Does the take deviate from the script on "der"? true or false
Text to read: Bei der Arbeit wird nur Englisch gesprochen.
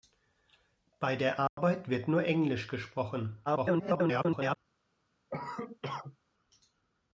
false